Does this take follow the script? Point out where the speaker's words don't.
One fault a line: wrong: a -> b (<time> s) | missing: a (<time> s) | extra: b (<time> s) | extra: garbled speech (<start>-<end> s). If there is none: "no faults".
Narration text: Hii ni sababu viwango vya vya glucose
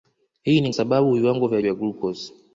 no faults